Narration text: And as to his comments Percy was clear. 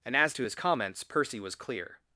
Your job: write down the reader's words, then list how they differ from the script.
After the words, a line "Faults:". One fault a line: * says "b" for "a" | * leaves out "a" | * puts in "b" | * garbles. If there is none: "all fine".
And as to his comments Percy was clear.
Faults:
all fine